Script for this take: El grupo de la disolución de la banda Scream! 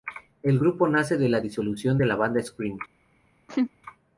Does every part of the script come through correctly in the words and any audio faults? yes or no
no